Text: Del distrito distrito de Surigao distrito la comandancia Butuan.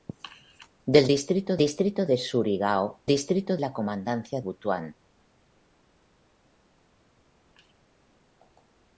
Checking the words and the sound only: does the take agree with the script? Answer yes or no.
yes